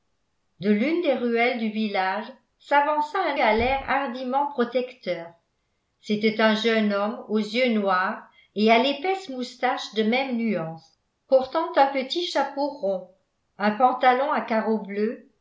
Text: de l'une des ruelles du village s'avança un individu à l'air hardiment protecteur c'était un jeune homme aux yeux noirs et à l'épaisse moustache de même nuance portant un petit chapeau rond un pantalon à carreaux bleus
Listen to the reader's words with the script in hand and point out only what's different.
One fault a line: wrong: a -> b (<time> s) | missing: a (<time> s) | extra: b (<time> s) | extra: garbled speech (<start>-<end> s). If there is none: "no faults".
missing: individu (3.4 s)